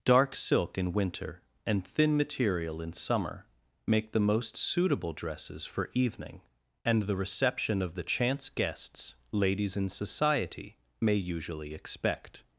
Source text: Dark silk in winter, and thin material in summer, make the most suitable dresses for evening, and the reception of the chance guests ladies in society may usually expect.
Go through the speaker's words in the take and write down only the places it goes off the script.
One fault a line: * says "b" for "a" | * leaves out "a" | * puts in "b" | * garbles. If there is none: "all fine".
all fine